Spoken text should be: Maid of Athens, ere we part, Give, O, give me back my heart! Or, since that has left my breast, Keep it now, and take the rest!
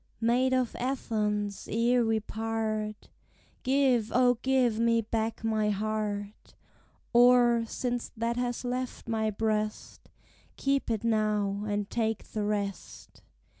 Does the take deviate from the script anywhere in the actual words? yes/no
no